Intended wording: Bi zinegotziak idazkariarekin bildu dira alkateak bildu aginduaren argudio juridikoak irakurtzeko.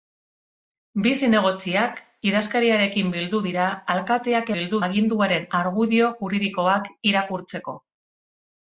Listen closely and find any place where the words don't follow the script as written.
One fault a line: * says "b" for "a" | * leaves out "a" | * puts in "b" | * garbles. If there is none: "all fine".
all fine